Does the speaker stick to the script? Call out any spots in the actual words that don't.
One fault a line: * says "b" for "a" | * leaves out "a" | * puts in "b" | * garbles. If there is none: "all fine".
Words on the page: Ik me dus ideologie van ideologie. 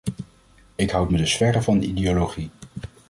* puts in "houd"
* says "verre" for "ideologie"